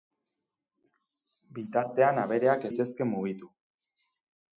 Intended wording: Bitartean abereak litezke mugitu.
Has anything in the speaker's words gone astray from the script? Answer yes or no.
no